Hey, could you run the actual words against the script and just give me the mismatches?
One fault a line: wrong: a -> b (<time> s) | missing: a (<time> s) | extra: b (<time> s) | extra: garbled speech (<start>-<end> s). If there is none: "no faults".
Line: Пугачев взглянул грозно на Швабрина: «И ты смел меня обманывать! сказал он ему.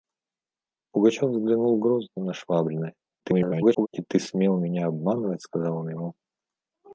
extra: garbled speech (3.2-3.9 s)